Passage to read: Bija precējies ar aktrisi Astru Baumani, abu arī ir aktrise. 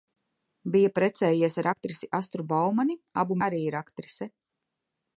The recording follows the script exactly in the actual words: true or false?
true